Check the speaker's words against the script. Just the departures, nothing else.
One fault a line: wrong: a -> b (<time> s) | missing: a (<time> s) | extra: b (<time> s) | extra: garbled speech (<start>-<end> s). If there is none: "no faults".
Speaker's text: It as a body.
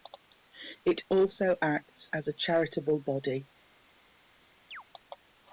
extra: also acts (1.1 s)
extra: charitable (2.3 s)